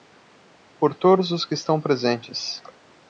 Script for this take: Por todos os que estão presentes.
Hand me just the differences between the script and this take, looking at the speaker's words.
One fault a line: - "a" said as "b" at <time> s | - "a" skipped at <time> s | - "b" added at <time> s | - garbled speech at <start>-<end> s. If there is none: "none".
none